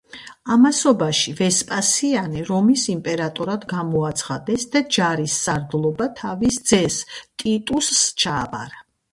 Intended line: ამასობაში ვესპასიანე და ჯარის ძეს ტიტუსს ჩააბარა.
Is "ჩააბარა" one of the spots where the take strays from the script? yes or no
no